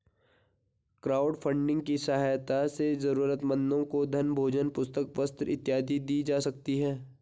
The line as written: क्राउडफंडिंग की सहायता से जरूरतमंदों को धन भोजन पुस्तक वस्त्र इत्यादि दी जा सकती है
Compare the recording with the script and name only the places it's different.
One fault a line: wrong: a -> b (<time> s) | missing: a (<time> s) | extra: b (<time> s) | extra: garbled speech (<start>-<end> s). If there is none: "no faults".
no faults